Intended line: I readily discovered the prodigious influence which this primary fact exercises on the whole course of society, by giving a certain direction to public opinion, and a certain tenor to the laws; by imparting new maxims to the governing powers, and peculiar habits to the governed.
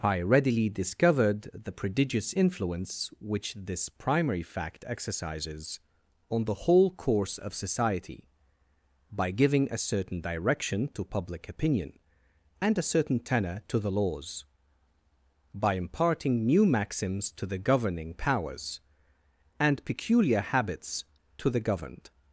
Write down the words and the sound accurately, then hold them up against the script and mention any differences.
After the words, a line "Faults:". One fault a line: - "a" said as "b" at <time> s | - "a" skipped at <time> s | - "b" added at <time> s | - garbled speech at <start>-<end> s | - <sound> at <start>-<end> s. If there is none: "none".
I readily discovered the prodigious influence which this primary fact exercises on the whole course of society, by giving a certain direction to public opinion, and a certain tenor to the laws; by imparting new maxims to the governing powers, and peculiar habits to the governed.
Faults:
none